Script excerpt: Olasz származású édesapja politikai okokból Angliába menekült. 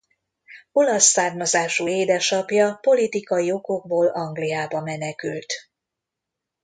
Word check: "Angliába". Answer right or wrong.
right